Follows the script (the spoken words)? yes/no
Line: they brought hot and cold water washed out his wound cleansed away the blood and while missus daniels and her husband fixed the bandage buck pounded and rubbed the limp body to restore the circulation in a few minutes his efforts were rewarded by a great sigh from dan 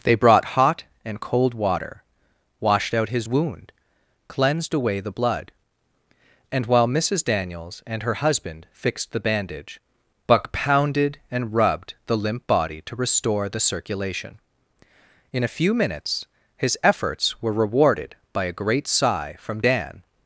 yes